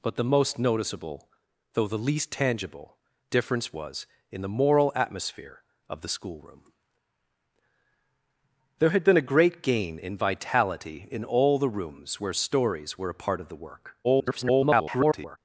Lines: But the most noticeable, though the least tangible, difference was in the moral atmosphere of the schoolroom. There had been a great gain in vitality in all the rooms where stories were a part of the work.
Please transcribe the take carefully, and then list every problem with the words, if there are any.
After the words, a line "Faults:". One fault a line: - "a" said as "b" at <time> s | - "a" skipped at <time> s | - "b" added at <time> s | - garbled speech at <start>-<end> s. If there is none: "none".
But the most noticeable, though the least tangible, difference was in the moral atmosphere of the schoolroom. There had been a great gain in vitality in all the rooms where stories were a part of the work. [garbled]
Faults:
- garbled speech at 14.0-15.4 s